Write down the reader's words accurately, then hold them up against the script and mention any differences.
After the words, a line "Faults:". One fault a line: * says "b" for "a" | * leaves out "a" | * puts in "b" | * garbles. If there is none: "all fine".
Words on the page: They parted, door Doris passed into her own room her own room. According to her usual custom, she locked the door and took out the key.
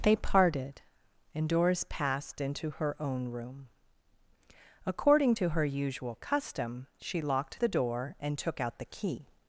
They parted, and Doris passed into her own room. According to her usual custom, she locked the door and took out the key.
Faults:
* says "and" for "door"
* leaves out "her own room"